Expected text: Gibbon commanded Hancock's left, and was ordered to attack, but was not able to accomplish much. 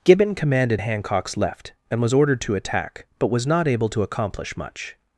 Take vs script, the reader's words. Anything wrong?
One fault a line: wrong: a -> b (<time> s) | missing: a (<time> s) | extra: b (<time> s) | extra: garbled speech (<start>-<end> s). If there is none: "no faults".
no faults